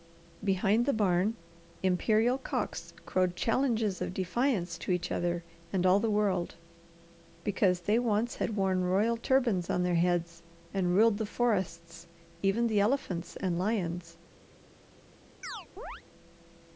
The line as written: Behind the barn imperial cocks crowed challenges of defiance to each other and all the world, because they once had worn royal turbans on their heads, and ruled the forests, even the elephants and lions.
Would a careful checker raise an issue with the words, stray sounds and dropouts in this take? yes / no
yes